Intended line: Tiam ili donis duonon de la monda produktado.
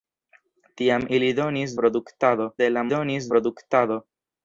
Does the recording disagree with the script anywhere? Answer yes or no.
yes